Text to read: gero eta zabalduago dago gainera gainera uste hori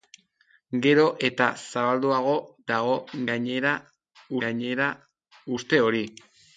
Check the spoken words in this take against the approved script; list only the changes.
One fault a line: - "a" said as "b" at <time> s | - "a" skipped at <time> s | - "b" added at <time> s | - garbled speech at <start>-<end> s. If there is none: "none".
none